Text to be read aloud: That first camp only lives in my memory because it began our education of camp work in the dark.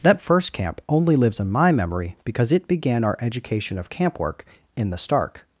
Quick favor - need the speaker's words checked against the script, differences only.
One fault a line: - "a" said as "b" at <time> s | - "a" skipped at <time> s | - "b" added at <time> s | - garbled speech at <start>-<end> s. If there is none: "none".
- "dark" said as "stark" at 5.0 s